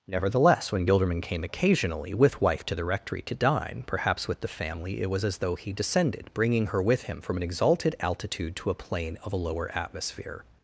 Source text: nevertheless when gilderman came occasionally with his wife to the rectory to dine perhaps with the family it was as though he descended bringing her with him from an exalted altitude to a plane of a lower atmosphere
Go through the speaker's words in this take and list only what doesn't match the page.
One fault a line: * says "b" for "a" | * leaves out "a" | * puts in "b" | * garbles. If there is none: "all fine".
* leaves out "his"